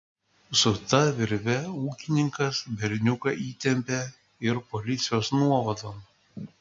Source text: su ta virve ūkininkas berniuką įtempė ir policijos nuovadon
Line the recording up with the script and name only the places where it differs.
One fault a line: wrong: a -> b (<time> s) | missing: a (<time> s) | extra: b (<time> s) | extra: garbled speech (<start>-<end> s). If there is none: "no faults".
no faults